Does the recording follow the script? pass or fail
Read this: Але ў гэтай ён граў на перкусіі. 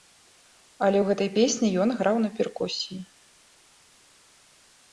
fail